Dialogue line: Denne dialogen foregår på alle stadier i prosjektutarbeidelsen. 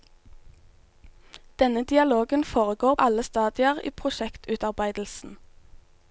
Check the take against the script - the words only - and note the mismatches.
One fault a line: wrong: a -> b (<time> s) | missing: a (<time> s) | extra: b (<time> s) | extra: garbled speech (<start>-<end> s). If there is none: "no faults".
missing: på (3.0 s)